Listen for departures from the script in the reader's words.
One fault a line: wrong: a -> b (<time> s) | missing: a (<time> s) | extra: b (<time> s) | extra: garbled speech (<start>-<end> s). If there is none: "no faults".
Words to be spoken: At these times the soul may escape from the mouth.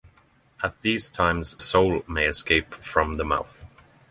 missing: the (1.6 s)